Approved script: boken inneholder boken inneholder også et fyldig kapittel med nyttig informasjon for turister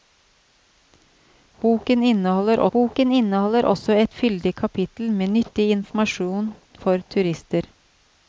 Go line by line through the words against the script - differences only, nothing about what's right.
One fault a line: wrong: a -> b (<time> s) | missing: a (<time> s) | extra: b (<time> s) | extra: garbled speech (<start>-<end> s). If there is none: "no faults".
no faults